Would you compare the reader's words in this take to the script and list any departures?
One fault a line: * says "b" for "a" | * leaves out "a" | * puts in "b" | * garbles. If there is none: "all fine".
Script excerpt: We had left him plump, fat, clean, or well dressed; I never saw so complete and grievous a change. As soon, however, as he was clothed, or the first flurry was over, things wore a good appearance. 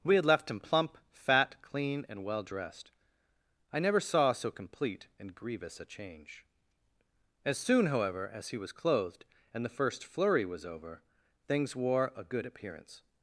* says "and" for "or"
* says "and" for "or"